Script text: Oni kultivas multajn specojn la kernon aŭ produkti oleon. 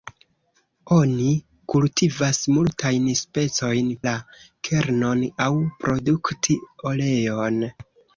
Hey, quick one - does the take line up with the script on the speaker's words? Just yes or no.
yes